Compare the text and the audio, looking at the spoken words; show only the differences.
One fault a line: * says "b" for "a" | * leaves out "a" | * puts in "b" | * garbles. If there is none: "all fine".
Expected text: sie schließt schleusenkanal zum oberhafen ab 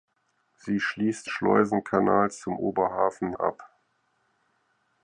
all fine